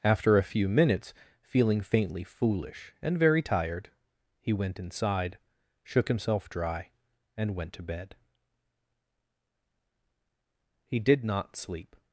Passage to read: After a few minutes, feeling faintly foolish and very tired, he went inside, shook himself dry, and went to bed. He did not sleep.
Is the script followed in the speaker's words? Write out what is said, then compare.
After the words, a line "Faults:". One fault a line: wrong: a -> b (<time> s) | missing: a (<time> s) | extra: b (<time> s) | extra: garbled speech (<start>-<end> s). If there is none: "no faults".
After a few minutes, feeling faintly foolish and very tired, he went inside, shook himself dry, and went to bed. He did not sleep.
Faults:
no faults